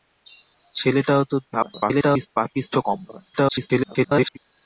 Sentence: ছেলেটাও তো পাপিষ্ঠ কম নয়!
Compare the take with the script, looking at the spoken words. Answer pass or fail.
fail